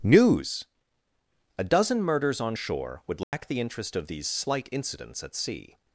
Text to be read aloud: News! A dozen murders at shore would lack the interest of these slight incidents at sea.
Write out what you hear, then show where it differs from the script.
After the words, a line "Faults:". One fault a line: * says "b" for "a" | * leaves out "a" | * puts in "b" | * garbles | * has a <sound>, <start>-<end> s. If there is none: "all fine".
News! A dozen murders on shore would lack the interest of these slight incidents at sea.
Faults:
* says "on" for "at"
* has a dropout, 3.2-3.3 s